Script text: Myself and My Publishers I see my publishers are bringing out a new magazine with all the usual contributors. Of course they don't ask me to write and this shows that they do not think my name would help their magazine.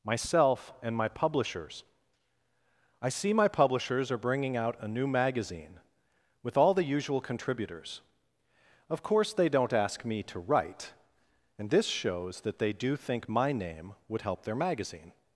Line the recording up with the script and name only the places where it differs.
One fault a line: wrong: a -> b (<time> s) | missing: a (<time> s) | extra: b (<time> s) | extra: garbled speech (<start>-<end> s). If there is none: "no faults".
missing: not (12.9 s)